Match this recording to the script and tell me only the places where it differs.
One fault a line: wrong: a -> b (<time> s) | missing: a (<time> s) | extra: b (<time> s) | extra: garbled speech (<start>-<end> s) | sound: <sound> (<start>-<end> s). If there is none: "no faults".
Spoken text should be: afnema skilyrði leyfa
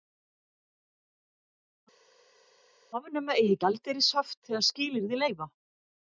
extra: eigi gjaldeyrishöft þegar (3.4 s)